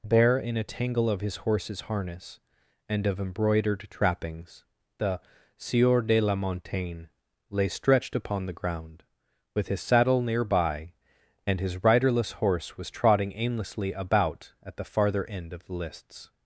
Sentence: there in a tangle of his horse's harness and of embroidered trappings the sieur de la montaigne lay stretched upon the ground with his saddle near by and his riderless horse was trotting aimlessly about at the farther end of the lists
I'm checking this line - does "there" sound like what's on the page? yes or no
no